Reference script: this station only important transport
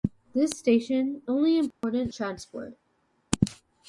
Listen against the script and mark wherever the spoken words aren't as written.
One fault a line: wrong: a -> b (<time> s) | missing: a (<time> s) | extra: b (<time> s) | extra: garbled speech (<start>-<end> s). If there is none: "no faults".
no faults